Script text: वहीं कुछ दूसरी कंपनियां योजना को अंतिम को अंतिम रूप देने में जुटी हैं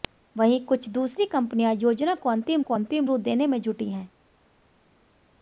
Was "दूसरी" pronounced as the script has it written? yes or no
yes